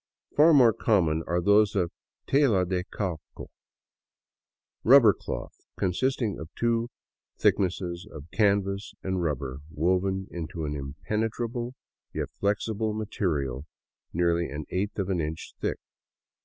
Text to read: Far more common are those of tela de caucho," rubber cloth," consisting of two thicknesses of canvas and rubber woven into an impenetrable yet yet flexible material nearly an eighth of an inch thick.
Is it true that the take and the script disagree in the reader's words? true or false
true